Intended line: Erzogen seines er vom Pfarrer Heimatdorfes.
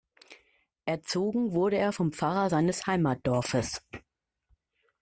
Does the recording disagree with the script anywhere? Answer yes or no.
yes